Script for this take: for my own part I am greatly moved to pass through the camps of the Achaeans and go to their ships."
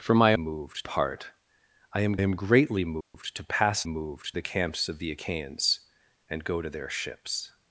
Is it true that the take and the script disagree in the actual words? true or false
true